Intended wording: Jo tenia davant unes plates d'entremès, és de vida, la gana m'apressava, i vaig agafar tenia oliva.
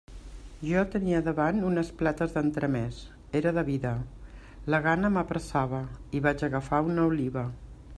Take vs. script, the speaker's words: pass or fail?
fail